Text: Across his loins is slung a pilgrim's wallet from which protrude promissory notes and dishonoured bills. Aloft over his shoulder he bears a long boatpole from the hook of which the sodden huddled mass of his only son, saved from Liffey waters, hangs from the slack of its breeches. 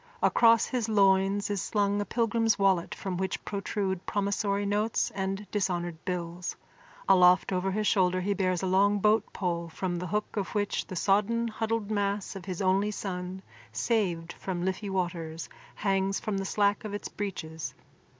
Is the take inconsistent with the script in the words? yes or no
no